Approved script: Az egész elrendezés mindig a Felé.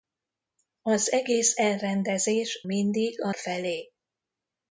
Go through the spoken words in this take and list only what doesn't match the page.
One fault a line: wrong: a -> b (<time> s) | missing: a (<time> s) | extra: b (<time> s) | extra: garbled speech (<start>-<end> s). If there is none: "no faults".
no faults